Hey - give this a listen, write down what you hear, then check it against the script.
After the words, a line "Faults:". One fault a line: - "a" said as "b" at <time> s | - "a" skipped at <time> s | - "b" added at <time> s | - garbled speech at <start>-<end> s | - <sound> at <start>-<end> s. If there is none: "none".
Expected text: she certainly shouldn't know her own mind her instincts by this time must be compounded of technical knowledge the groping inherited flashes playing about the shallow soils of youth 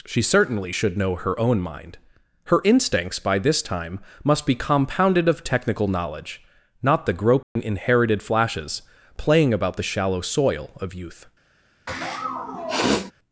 she certainly should know her own mind her instincts by this time must be compounded of technical knowledge not the groping inherited flashes playing about the shallow soil of youth
Faults:
- "shouldn't" said as "should" at 0.7 s
- "not" added at 6.8 s
- dropout at 7.4-7.6 s
- "soils" said as "soil" at 10.2 s
- sniff at 11.9-13.1 s